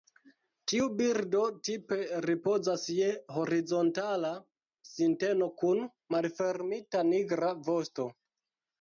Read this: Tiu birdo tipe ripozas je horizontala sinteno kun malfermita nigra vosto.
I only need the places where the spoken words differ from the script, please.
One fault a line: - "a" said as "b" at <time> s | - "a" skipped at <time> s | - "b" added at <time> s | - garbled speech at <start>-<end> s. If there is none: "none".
none